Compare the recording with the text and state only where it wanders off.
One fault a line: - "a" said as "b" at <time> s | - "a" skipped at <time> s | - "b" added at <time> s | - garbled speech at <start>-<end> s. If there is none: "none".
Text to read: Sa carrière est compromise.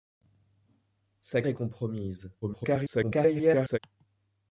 - "carrière" skipped at 1.4 s
- garbled speech at 2.4-3.8 s